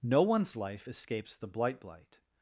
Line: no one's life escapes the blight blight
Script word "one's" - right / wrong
right